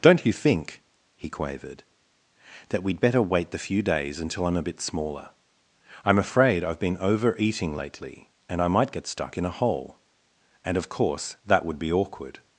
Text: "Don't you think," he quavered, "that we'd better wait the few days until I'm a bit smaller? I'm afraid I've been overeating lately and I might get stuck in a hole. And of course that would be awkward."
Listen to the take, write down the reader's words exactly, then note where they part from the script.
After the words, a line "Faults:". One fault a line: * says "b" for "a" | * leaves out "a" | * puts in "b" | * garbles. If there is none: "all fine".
"Don't you think," he quavered, "that we'd better wait the few days until I'm a bit smaller? I'm afraid I've been overeating lately and I might get stuck in a hole. And of course that would be awkward."
Faults:
all fine